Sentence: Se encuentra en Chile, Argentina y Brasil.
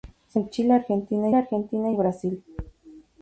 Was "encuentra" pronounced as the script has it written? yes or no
no